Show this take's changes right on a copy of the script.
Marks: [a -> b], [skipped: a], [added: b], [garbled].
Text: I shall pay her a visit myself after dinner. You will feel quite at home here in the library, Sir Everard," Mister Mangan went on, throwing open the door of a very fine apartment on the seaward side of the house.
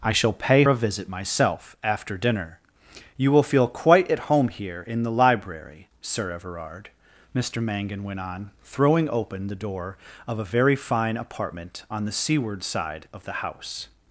I shall pay [skipped: her] a visit myself after dinner. You will feel quite at home here in the library, Sir Everard," Mister Mangan went on, throwing open the door of a very fine apartment on the seaward side of the house.